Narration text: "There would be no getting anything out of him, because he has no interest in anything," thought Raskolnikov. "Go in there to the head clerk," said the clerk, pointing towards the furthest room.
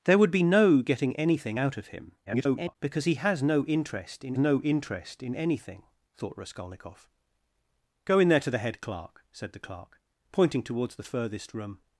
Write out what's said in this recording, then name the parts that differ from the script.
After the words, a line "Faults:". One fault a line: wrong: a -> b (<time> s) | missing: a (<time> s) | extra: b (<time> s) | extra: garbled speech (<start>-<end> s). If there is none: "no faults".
"There would be no getting anything out of him, [garbled] because he has no interest in no interest in anything," thought Raskolnikov. "Go in there to the head clerk," said the clerk, pointing towards the furthest room.
Faults:
extra: garbled speech (2.3-2.8 s)
extra: no interest in (4.4 s)